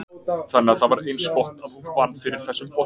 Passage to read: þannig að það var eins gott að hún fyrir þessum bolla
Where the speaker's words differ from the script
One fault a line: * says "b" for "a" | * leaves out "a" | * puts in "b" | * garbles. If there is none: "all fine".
* puts in "vann"